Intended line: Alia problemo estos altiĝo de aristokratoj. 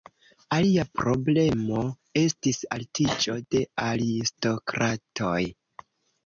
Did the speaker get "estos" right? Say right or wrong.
wrong